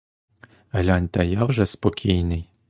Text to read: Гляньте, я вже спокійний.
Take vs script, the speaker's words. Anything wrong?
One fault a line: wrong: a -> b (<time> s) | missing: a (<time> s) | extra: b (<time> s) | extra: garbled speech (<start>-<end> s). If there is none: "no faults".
no faults